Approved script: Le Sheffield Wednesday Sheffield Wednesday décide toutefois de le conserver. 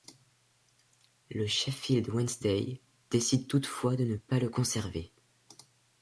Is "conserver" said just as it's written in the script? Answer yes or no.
yes